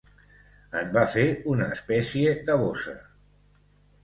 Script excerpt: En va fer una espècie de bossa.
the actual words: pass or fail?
pass